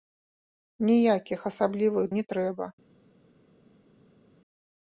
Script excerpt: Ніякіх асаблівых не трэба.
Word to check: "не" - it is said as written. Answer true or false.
true